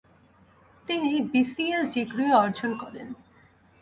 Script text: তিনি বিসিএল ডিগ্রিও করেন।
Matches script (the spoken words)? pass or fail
fail